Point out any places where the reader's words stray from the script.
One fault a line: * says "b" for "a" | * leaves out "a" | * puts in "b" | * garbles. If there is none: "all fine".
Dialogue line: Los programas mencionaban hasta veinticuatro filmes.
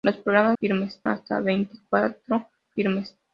* says "filmes" for "mencionaban"